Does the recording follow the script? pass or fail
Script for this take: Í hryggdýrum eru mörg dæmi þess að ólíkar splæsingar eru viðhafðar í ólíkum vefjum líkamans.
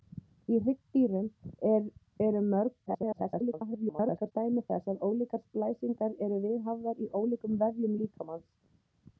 fail